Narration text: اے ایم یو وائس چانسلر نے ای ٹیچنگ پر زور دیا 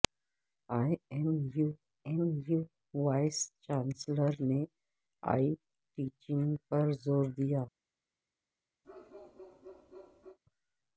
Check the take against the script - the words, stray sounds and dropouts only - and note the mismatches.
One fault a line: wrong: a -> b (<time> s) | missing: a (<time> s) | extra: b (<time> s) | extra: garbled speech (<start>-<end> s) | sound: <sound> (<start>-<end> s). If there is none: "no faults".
extra: ایم یو (2.1 s)
sound: bark (8.8-10.4 s)